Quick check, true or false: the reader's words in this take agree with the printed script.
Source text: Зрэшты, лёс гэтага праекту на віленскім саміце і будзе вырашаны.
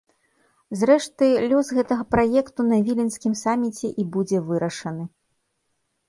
true